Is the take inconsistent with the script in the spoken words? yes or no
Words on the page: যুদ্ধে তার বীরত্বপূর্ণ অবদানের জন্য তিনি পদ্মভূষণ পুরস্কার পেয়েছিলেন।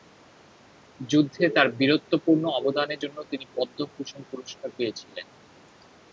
no